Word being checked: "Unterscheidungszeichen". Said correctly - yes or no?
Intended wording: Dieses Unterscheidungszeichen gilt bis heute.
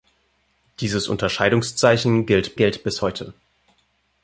yes